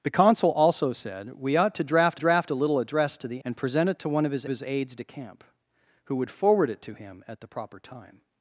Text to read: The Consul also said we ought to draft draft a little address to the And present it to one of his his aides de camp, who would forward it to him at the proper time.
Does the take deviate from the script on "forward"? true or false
false